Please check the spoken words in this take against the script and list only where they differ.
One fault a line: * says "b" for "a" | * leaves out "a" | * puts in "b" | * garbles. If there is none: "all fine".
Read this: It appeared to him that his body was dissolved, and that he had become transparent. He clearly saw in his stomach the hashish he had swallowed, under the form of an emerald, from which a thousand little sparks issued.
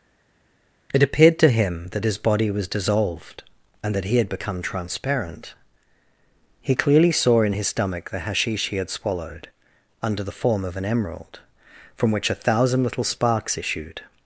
all fine